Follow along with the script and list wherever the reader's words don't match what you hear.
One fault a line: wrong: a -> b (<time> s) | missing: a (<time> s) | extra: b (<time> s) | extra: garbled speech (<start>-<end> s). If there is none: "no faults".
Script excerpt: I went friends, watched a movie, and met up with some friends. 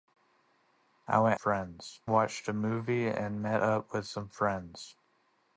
no faults